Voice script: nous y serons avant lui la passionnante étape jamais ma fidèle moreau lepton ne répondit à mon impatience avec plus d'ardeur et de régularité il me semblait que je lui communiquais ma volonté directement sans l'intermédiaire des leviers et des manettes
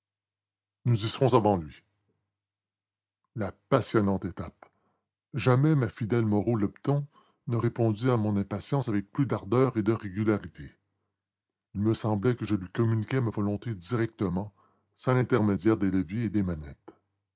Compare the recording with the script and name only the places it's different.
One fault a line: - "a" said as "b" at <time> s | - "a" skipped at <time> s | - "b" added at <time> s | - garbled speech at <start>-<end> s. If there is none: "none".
none